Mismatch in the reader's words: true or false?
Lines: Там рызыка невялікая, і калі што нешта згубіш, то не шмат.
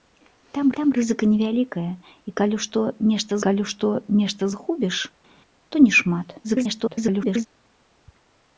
true